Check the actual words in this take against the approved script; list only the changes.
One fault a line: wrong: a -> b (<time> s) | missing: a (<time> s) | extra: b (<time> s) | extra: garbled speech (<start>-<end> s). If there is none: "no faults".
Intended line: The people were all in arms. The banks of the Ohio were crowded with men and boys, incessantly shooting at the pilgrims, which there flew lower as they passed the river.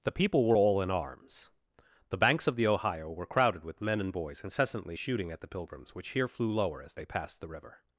wrong: there -> here (6.1 s)